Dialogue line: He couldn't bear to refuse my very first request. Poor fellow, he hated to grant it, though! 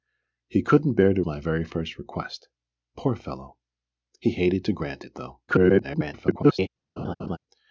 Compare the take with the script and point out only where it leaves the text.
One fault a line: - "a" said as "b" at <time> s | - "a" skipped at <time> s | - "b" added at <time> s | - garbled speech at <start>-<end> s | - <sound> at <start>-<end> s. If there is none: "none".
- "refuse" skipped at 1.2 s
- garbled speech at 5.5-6.7 s
- laugh at 7.0-7.4 s